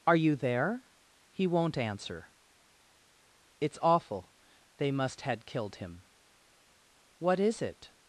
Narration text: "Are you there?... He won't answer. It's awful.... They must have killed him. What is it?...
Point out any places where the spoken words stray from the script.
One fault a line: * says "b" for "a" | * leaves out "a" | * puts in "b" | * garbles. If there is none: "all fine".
* says "had" for "have"